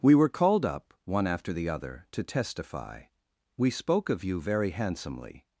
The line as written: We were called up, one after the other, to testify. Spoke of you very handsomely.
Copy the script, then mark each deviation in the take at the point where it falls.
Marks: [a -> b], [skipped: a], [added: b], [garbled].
We were called up, one after the other, to testify. [added: We] Spoke of you very handsomely.